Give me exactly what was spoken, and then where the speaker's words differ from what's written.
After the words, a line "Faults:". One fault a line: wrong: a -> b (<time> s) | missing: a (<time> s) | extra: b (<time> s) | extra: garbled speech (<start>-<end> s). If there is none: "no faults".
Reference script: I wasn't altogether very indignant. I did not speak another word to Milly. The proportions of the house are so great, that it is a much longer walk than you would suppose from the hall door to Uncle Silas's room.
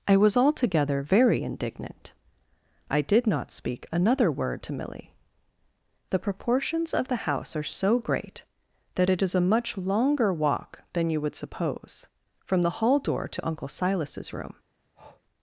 I was altogether very indignant. I did not speak another word to Milly. The proportions of the house are so great, that it is a much longer walk than you would suppose from the hall door to Uncle Silas's room.
Faults:
wrong: wasn't -> was (0.2 s)